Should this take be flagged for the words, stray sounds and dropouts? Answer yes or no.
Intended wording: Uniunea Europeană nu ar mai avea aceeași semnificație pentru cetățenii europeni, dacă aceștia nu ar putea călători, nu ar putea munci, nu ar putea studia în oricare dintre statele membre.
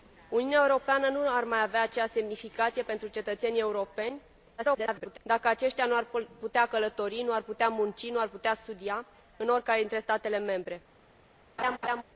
yes